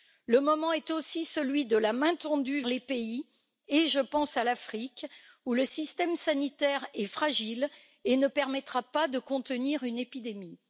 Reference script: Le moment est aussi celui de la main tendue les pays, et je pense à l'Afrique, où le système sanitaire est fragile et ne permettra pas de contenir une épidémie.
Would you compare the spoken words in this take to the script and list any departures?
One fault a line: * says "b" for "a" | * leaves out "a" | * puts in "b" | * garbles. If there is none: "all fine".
all fine